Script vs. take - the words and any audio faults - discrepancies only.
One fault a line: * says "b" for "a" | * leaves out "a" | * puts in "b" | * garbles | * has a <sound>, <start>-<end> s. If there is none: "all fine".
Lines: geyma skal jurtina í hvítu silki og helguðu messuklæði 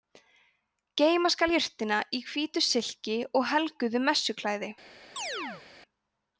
* has a chirp, 5.2-5.6 s